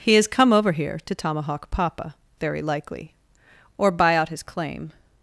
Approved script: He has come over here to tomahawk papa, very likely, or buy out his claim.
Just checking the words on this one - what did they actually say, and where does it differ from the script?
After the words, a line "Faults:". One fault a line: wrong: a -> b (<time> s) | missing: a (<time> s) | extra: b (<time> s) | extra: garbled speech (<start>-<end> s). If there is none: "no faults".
He has come over here to tomahawk papa, very likely, or buy out his claim.
Faults:
no faults